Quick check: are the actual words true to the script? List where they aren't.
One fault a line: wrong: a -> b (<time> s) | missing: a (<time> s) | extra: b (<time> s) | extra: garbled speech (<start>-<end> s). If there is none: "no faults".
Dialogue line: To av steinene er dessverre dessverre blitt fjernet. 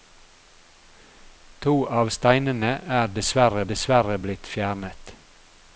no faults